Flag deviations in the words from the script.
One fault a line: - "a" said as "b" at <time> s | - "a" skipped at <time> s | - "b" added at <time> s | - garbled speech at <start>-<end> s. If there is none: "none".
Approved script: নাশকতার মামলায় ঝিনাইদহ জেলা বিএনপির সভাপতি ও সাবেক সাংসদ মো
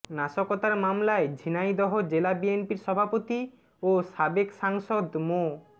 none